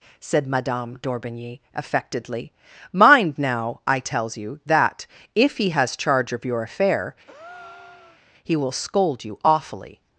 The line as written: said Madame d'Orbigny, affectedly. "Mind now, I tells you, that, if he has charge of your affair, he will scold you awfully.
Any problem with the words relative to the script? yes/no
no